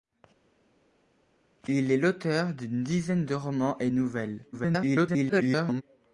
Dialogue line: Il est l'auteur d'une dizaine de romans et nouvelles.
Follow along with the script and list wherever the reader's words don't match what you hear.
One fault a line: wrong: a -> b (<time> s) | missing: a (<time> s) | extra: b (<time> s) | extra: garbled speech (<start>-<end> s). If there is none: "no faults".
extra: garbled speech (4.5-5.8 s)